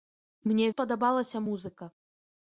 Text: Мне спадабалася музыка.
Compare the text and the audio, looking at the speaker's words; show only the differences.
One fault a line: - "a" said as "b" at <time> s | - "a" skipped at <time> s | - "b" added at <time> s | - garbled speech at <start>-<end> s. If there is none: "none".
none